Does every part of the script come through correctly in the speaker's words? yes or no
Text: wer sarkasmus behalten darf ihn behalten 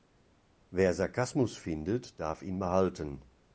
no